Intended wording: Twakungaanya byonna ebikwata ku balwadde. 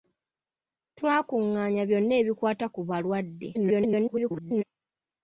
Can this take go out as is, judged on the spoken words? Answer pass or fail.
fail